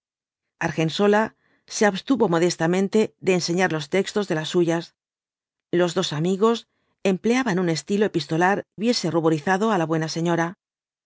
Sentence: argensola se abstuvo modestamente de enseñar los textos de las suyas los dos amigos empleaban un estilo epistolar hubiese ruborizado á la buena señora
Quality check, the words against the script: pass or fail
pass